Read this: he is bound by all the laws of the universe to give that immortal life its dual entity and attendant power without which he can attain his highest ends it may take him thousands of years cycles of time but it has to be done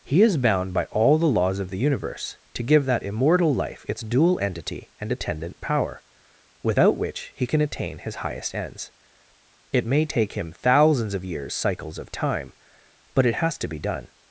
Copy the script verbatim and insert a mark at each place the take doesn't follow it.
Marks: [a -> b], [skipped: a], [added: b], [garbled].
he is bound by all the laws of the universe to give that immortal life its dual entity and attendant power without which he can attain his highest ends it may take him thousands of years cycles of time but it has to be done